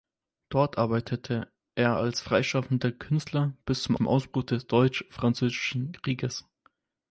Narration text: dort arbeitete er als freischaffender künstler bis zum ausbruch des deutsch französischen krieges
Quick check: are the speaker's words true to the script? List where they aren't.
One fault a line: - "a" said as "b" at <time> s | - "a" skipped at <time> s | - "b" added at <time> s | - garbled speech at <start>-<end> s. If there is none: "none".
- "zum" added at 3.9 s